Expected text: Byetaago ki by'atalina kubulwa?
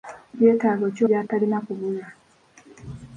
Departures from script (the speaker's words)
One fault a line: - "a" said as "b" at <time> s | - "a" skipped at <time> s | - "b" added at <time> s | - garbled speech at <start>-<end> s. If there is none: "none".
none